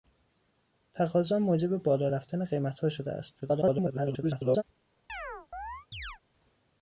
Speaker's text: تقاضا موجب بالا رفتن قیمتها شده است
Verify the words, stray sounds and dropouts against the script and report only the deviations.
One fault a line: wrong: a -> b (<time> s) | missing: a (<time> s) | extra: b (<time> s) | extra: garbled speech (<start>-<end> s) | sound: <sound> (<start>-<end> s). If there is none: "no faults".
extra: garbled speech (3.4-4.6 s)
sound: chirp (5.1-6.2 s)